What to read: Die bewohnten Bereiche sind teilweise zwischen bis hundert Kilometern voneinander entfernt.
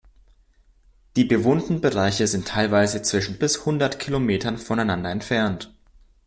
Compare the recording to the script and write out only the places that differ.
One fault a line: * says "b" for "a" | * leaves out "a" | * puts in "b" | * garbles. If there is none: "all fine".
all fine